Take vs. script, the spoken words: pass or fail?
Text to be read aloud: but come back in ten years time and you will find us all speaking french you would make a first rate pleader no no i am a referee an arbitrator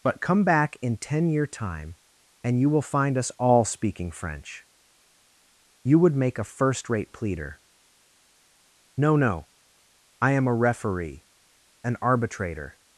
fail